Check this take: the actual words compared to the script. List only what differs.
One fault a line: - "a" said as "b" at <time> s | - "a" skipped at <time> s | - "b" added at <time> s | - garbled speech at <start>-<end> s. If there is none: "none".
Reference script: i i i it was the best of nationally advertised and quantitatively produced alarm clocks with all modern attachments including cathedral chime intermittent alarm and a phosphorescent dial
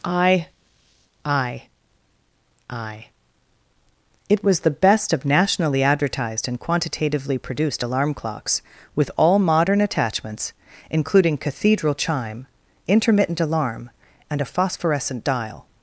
none